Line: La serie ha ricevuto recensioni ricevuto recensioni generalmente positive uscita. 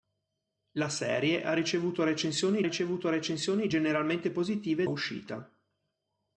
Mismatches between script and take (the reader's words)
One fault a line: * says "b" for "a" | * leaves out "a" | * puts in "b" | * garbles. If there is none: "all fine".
all fine